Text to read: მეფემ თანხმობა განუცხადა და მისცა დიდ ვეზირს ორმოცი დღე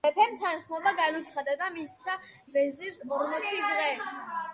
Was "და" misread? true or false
false